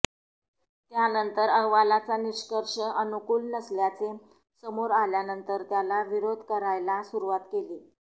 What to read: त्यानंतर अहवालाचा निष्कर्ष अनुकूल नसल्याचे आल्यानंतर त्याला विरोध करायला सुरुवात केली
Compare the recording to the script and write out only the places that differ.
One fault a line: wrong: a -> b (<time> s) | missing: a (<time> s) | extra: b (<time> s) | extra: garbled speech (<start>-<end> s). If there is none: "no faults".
extra: समोर (4.6 s)